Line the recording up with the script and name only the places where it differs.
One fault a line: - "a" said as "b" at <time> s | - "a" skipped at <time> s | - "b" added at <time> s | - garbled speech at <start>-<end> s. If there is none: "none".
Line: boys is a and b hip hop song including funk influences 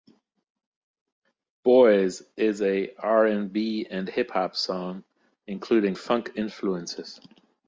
- "r" added at 3.0 s
- "and" added at 3.9 s